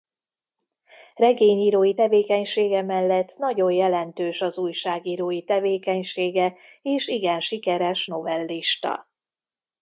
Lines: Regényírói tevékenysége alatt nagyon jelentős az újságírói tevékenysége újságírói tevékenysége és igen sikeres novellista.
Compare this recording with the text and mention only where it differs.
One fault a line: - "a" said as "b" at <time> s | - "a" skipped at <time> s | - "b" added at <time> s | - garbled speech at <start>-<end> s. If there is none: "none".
- "alatt" said as "mellett" at 2.8 s
- "újságírói tevékenysége" skipped at 6.6 s